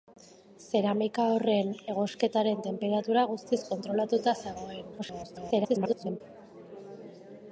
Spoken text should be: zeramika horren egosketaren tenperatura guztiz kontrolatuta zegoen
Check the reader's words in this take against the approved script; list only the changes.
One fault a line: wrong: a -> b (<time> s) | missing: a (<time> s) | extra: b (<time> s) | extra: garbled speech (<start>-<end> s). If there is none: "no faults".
extra: garbled speech (5.0-6.2 s)